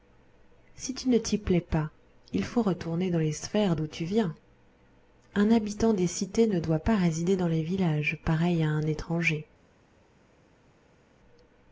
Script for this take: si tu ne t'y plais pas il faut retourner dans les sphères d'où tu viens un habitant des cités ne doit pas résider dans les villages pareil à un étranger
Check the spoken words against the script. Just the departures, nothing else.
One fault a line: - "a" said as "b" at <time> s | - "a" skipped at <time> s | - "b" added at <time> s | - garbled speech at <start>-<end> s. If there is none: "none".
none